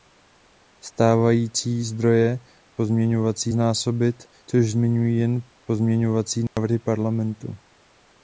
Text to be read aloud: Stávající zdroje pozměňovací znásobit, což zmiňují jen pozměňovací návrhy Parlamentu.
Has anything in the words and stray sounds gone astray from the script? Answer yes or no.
yes